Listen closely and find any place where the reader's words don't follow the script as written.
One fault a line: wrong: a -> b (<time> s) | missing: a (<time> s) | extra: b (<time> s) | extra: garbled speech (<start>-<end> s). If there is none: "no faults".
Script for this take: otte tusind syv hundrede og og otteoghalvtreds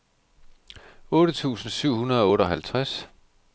missing: og (2.3 s)